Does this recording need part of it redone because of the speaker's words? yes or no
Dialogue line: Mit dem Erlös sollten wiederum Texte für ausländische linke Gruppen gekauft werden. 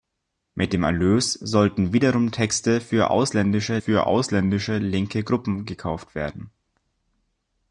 yes